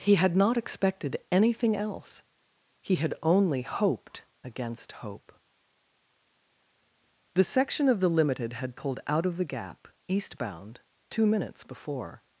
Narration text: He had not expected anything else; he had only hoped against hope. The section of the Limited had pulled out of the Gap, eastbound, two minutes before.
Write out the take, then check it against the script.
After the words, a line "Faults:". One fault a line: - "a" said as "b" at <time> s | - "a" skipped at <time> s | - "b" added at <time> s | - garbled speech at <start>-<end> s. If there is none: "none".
He had not expected anything else; he had only hoped against hope. The section of the Limited had pulled out of the Gap, eastbound, two minutes before.
Faults:
none